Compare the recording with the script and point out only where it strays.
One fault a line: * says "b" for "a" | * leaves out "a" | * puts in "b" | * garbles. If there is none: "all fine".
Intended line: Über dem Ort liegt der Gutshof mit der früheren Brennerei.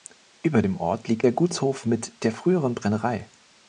all fine